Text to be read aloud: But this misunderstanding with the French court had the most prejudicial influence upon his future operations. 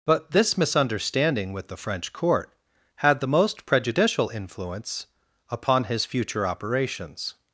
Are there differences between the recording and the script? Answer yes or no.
no